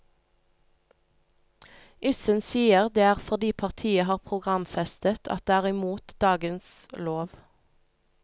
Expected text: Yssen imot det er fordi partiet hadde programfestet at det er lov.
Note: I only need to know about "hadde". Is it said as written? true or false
false